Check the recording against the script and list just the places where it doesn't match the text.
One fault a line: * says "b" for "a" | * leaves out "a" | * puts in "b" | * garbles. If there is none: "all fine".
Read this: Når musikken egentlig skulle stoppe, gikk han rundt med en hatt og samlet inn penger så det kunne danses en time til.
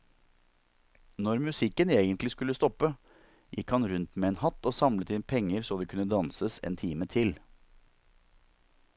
all fine